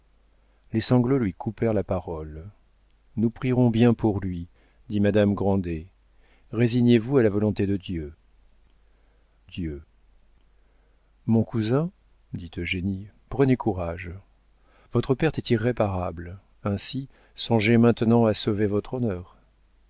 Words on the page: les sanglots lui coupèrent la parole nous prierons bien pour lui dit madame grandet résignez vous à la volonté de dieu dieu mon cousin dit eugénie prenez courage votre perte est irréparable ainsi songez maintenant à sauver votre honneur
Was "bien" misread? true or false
false